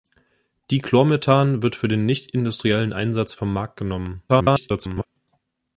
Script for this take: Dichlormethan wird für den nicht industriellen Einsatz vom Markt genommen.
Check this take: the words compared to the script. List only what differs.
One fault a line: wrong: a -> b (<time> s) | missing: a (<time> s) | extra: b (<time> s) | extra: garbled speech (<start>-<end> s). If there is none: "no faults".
extra: garbled speech (4.3-5.1 s)